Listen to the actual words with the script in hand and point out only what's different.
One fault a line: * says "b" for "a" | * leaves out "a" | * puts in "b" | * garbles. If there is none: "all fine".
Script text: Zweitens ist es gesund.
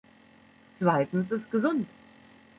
* leaves out "ist"